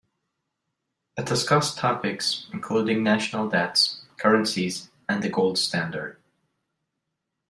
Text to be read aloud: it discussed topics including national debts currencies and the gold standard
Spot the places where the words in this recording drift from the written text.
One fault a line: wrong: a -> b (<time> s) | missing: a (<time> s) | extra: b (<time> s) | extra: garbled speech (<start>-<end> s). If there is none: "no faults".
no faults